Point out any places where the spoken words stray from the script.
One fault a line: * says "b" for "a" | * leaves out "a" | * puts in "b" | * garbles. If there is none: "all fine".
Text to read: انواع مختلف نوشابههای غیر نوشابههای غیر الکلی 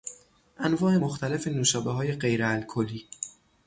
* leaves out "نوشابههای غیر"